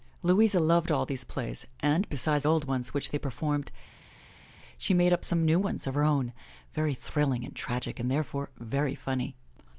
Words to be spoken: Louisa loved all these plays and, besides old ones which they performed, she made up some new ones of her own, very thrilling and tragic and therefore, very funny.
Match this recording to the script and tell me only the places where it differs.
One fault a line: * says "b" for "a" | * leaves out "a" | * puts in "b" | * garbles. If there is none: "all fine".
all fine